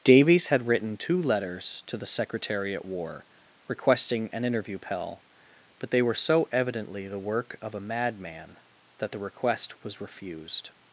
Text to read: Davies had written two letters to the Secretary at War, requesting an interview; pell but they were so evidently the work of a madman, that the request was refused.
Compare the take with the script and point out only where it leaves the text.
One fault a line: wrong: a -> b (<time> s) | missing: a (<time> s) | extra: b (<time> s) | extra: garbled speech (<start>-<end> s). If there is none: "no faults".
no faults